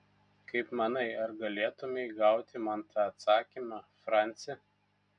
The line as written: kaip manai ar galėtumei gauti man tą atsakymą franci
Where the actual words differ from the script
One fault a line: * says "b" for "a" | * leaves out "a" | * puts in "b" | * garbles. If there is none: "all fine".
all fine